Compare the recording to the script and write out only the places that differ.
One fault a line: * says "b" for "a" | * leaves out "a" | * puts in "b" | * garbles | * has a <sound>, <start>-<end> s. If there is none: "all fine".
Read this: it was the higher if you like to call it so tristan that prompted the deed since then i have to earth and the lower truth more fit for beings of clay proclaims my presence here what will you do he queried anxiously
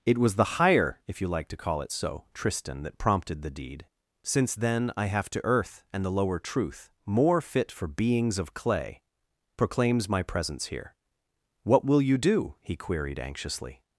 all fine